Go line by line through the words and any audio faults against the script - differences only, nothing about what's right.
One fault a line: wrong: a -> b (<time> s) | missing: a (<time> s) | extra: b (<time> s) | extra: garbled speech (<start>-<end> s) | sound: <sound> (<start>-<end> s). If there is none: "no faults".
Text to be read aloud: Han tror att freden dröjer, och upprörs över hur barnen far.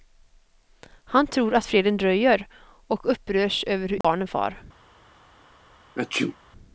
sound: dropout (4.0-4.0 s)
sound: sneeze (5.9-6.4 s)